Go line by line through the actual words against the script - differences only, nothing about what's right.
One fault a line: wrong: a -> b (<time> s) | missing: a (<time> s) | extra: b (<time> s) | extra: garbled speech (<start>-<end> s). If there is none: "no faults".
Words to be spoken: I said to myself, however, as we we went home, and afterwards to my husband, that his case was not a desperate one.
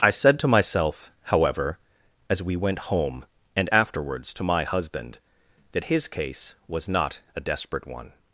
missing: we (2.5 s)